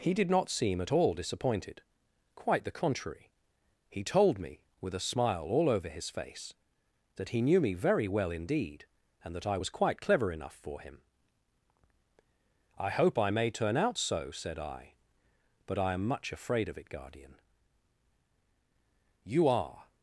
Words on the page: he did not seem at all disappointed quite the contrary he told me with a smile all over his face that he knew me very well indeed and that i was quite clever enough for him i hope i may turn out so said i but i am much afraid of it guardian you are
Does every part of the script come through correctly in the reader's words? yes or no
yes